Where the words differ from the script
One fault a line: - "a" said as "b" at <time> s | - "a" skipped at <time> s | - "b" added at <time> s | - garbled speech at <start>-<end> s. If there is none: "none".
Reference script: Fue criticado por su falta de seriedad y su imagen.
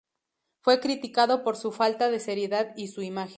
none